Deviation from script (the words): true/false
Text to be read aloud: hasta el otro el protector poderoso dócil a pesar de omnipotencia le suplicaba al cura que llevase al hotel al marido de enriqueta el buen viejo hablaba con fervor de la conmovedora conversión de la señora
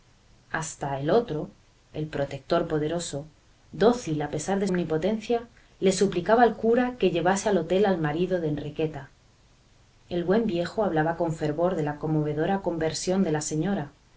false